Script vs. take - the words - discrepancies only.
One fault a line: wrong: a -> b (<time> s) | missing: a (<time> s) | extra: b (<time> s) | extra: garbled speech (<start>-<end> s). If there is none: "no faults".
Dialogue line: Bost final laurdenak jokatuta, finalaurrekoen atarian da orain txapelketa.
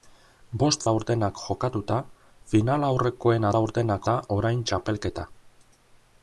missing: final (0.8 s)
wrong: atarian -> laurdenak (3.5 s)